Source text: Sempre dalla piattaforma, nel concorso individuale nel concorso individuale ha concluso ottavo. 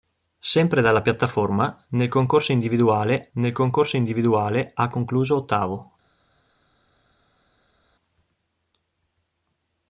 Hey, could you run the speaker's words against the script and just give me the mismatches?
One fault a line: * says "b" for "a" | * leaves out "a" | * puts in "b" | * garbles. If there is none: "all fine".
all fine